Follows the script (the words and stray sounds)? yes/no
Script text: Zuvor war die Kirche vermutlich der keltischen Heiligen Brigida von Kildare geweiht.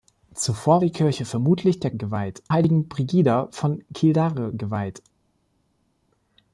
no